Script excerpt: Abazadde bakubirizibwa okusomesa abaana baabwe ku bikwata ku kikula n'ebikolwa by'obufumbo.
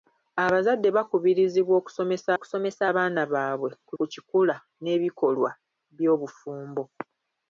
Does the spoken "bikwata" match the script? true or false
false